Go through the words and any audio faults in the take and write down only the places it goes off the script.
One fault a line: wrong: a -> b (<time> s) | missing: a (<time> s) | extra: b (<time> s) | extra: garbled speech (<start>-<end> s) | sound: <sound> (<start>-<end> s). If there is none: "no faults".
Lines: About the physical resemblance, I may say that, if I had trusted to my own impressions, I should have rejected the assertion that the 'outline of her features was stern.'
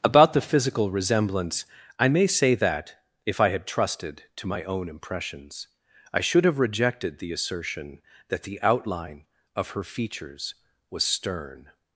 no faults